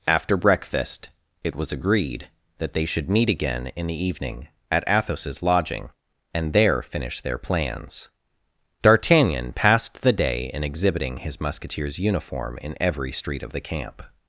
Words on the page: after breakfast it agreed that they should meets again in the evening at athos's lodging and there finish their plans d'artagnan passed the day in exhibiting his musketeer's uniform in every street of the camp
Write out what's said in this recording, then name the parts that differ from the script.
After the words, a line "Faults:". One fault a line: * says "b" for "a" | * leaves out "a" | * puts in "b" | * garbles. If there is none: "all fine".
after breakfast it was agreed that they should meet again in the evening at athos's lodging and there finish their plans d'artagnan passed the day in exhibiting his musketeer's uniform in every street of the camp
Faults:
* puts in "was"
* says "meet" for "meets"